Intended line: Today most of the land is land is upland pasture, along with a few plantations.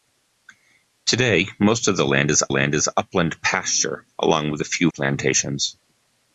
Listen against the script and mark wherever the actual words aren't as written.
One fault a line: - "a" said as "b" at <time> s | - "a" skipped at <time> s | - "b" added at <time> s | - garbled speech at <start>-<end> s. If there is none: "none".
none